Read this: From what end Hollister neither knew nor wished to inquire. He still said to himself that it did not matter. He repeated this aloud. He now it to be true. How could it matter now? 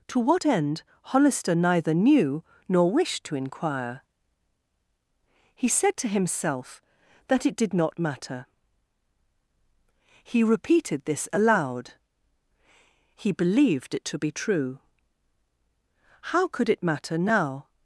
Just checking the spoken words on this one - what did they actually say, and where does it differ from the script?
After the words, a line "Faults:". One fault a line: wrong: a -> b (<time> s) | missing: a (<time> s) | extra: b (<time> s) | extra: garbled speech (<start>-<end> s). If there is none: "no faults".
To what end Hollister neither knew nor wished to inquire. He said to himself that it did not matter. He repeated this aloud. He believed it to be true. How could it matter now?
Faults:
wrong: From -> To (0.1 s)
missing: still (5.7 s)
wrong: now -> believed (13.3 s)